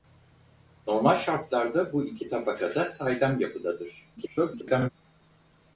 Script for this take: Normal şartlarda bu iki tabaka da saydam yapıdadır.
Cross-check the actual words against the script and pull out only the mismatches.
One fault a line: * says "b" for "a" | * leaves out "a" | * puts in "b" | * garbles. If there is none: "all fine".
* garbles